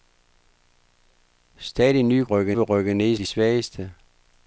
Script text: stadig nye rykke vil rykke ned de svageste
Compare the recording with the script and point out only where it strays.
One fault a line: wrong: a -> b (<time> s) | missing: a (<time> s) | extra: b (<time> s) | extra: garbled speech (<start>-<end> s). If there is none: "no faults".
no faults